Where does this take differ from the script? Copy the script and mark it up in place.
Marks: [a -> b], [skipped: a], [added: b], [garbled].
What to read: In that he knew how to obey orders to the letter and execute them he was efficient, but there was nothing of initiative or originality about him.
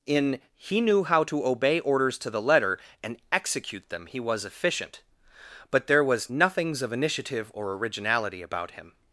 In [skipped: that] he knew how to obey orders to the letter and execute them he was efficient, but there was [nothing -> nothings] of initiative or originality about him.